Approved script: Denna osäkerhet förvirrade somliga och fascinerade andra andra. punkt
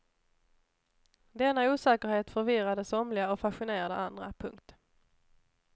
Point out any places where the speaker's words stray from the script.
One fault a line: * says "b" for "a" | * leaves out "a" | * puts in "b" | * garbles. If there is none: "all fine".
* leaves out "andra"